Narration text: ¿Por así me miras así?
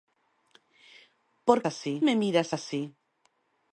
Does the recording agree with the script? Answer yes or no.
yes